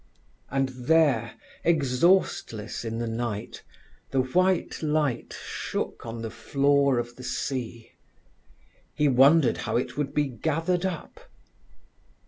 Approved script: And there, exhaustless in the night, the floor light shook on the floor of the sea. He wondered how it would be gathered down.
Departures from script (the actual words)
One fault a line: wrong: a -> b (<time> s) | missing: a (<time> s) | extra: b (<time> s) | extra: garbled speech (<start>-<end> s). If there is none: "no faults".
wrong: floor -> white (4.2 s)
wrong: down -> up (10.9 s)